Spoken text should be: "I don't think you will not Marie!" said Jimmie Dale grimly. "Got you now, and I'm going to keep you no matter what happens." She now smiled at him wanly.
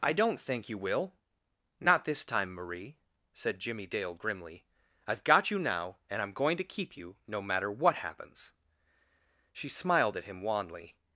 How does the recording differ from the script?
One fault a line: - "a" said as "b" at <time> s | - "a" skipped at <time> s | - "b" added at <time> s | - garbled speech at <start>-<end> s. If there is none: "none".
- "this time" added at 2.0 s
- "I've" added at 5.1 s
- "now" skipped at 9.7 s